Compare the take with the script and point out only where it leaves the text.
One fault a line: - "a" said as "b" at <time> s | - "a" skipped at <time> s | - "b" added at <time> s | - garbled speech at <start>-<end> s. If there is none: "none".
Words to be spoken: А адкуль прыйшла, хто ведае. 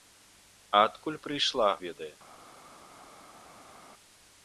- "хто" skipped at 1.7 s